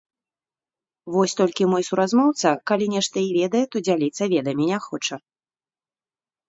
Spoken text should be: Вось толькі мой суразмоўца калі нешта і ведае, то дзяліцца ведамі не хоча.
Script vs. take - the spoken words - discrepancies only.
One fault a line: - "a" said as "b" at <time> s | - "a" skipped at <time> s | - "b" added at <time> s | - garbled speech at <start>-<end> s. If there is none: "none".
none